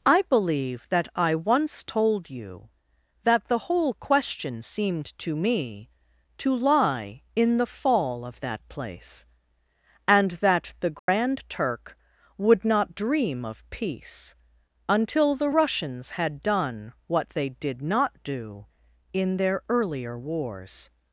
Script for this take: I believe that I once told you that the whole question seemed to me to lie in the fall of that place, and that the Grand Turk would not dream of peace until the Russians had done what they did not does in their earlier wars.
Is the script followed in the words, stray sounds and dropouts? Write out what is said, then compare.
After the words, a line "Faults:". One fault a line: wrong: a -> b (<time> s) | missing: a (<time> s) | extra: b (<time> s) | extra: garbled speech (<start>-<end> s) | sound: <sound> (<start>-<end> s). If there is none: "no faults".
I believe that I once told you that the whole question seemed to me to lie in the fall of that place, and that the Grand Turk would not dream of peace until the Russians had done what they did not do in their earlier wars.
Faults:
sound: dropout (11.0-11.1 s)
wrong: does -> do (18.2 s)